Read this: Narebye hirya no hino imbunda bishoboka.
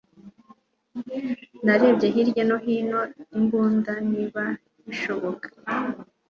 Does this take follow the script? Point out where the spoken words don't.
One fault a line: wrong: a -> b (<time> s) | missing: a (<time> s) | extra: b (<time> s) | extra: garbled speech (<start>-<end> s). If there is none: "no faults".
extra: niba (4.1 s)